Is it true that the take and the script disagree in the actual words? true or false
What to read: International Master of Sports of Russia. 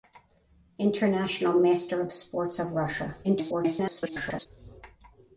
true